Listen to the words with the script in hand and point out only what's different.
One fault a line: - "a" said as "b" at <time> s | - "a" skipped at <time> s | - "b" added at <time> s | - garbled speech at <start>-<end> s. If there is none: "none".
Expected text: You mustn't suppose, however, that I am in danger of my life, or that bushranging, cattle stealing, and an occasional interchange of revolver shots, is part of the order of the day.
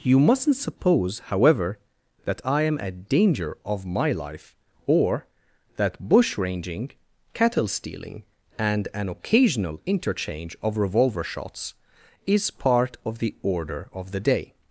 - "in" said as "at" at 2.8 s